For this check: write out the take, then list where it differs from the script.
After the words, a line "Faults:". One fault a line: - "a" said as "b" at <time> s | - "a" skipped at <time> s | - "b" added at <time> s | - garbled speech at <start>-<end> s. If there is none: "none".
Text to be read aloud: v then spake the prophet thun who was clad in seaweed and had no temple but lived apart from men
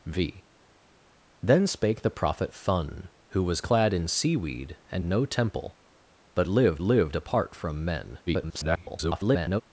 v then spake the prophet thun who was clad in seaweed and no temple but lived lived apart from men [garbled]
Faults:
- "had" skipped at 5.1 s
- "lived" added at 6.8 s
- garbled speech at 8.3-9.6 s